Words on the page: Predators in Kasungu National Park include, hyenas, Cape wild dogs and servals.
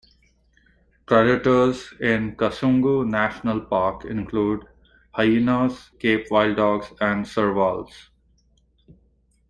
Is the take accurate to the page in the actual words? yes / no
yes